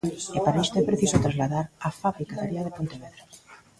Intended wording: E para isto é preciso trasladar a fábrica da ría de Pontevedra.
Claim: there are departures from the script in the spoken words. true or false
false